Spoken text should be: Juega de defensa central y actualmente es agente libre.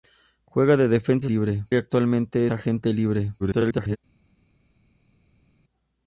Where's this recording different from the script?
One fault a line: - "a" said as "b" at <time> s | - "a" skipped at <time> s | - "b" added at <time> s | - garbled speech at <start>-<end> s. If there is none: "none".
- "central" said as "libre" at 1.2 s
- "es" skipped at 2.5 s
- garbled speech at 3.4-4.0 s